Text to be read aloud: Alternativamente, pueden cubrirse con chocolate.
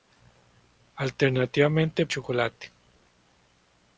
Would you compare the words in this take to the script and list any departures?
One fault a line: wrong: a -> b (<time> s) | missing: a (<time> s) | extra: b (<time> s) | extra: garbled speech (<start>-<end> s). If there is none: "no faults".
missing: pueden cubrirse con (2.1 s)